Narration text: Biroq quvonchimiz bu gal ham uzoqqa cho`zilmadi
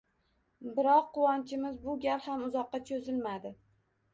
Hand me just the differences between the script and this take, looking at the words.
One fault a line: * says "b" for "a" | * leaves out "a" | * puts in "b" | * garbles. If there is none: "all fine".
all fine